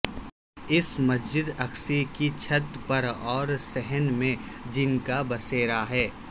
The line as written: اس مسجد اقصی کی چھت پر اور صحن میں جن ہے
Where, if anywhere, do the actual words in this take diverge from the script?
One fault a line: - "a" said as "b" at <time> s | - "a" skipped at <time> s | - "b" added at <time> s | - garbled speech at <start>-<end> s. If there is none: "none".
- "کا بسیرا" added at 5.1 s